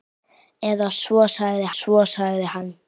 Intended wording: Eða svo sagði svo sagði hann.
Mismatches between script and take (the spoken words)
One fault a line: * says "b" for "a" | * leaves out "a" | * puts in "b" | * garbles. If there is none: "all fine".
all fine